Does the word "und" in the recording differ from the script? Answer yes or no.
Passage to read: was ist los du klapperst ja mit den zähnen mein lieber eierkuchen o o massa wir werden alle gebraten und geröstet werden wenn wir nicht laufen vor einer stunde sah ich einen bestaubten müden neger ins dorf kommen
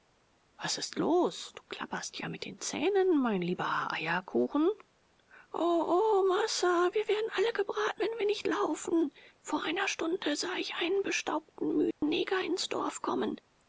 yes